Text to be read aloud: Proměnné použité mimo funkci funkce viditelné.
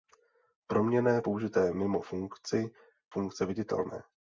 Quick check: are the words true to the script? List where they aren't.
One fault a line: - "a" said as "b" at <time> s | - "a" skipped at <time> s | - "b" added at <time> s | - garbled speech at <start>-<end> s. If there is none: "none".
none